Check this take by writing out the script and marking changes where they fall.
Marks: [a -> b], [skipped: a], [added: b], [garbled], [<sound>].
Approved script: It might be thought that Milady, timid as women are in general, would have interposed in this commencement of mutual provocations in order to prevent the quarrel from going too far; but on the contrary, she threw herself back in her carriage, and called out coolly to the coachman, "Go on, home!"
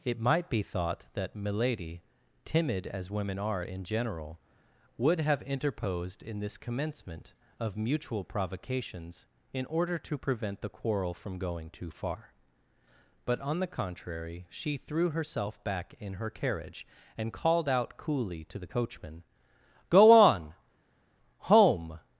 It might be thought that Milady, timid as women are in general, would have interposed in this commencement of mutual provocations in order to prevent the quarrel from going too far; but on the contrary, she threw herself back in her carriage, and called out coolly to the coachman, "Go on, home!"